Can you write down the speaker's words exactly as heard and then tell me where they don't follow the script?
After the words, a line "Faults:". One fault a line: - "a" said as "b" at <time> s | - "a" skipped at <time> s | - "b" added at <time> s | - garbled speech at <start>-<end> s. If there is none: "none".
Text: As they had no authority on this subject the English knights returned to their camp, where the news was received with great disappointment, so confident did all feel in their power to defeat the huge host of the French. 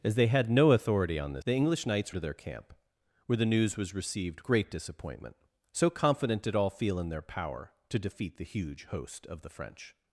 As they had no authority on this the English knights to their camp, where the news was received great disappointment, so confident did all feel in their power to defeat the huge host of the French.
Faults:
- "subject" skipped at 1.4 s
- "returned" skipped at 2.1 s
- "with" skipped at 4.4 s